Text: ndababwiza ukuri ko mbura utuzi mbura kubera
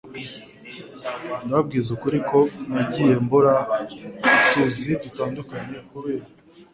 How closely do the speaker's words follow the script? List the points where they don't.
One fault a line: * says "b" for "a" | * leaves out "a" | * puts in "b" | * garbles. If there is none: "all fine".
* puts in "nagiye"
* says "dutandukanye" for "mbura"